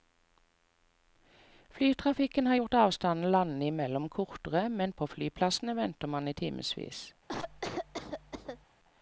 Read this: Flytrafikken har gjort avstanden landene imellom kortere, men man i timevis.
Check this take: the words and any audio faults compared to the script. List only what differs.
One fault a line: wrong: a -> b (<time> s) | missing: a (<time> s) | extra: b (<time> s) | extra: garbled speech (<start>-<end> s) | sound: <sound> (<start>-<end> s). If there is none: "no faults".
extra: på flyplassene venter (4.9 s)
sound: cough (7.3-8.7 s)